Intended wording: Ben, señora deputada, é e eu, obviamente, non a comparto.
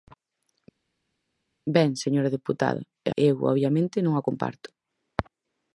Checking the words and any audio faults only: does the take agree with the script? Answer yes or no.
yes